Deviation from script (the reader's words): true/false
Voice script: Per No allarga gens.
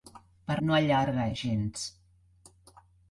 false